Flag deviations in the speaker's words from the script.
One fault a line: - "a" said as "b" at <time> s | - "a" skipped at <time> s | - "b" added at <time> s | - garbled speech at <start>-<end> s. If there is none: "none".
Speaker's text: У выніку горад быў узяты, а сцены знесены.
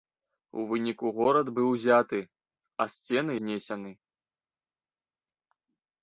none